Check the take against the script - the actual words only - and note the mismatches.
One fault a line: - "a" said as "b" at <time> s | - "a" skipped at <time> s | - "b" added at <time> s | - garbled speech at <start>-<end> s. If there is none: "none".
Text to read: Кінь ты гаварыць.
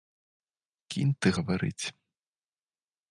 none